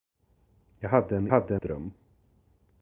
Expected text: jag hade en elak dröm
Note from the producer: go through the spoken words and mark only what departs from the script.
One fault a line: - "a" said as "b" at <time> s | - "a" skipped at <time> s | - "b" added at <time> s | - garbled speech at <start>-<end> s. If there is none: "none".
- "elak" said as "hade" at 1.3 s